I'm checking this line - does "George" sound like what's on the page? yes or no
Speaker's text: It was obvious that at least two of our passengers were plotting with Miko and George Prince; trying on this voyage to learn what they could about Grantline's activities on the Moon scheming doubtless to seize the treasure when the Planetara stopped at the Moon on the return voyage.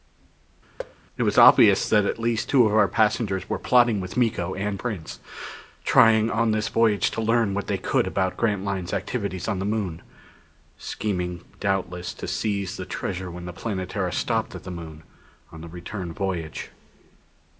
no